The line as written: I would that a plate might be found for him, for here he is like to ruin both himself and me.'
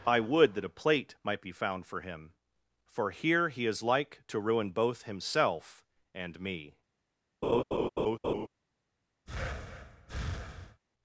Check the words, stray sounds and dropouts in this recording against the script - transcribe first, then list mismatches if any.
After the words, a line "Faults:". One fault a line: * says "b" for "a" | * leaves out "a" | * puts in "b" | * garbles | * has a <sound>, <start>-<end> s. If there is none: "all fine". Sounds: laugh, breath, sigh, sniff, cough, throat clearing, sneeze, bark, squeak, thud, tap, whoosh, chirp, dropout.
I would that a plate might be found for him, for here he is like to ruin both himself and me.'
Faults:
* has a laugh, 7.4-8.5 s
* has a breath, 9.3-10.8 s